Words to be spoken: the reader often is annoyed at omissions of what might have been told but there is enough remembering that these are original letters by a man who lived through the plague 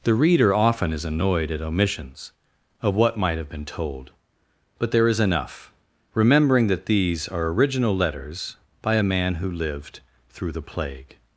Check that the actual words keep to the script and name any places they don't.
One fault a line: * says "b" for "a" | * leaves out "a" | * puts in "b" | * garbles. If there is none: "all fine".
all fine